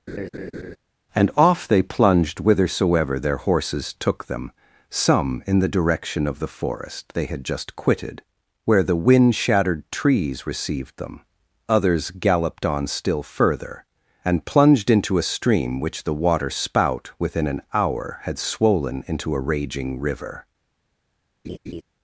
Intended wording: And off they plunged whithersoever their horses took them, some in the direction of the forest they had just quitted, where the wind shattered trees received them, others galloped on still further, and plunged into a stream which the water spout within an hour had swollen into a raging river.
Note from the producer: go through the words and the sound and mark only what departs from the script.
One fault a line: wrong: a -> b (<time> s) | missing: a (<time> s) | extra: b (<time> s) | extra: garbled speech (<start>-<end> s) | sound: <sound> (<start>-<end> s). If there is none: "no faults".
sound: laugh (0.1-0.8 s)
sound: laugh (21.4-21.8 s)